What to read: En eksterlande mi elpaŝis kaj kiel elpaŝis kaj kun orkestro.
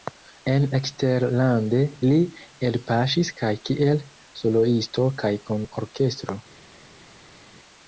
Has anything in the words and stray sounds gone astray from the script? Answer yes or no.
yes